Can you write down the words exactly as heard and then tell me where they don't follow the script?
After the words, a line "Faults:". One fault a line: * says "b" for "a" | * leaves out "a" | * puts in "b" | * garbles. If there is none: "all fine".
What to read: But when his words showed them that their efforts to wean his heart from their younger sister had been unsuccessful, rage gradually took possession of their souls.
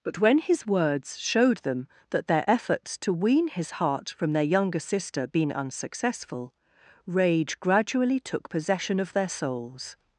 But when his words showed them that their efforts to wean his heart from their younger sister been unsuccessful, rage gradually took possession of their souls.
Faults:
* leaves out "had"